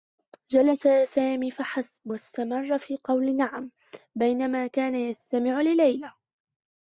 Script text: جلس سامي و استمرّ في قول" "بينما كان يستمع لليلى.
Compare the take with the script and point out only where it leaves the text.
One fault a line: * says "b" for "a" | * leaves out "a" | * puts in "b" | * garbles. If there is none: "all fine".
* puts in "فحسب"
* puts in "نعم"